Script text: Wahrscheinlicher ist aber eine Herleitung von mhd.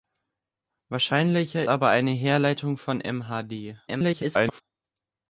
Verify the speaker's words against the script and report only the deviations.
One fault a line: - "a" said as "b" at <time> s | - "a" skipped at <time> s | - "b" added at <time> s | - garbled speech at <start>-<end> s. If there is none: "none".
- "ist" skipped at 1.7 s
- garbled speech at 3.9-4.6 s